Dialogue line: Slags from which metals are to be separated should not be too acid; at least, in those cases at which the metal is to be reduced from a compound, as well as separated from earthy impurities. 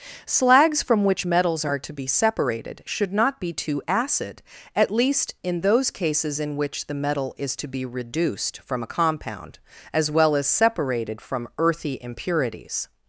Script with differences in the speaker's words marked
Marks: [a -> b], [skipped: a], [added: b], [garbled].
Slags from which metals are to be separated should not be too acid; at least, in those cases [at -> in] which the metal is to be reduced from a compound, as well as separated from earthy impurities.